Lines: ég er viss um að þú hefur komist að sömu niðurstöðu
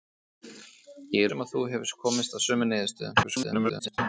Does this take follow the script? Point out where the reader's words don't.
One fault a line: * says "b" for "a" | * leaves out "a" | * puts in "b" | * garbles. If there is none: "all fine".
* leaves out "viss"
* garbles